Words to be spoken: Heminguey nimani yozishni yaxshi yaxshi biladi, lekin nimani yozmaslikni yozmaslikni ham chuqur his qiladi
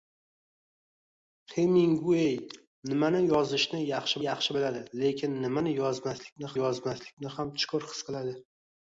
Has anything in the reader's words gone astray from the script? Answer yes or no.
no